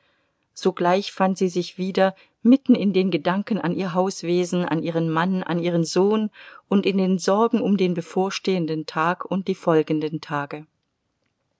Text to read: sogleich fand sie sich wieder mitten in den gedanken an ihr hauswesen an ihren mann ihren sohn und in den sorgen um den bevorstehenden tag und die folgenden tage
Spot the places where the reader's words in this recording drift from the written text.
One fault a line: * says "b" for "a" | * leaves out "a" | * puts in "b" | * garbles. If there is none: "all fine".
* puts in "an"